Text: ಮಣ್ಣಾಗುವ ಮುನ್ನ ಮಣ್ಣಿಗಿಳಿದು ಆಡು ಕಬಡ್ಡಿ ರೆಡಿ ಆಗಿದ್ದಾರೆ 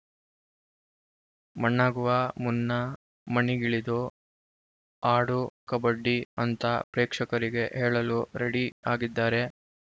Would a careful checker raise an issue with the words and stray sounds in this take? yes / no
yes